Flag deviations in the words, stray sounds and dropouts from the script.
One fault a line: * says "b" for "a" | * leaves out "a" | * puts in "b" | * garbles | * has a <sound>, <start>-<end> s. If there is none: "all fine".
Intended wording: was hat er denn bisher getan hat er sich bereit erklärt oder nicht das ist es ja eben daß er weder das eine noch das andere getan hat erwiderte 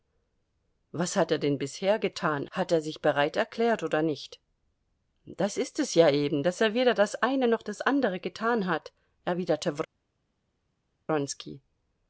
all fine